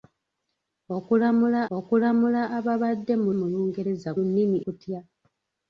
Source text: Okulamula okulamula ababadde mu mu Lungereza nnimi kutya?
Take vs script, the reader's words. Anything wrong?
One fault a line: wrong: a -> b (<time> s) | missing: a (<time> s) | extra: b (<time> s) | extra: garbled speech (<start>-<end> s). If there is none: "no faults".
no faults